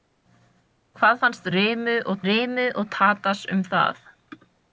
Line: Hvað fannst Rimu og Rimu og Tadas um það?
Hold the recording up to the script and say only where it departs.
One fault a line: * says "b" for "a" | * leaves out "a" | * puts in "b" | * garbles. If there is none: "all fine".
all fine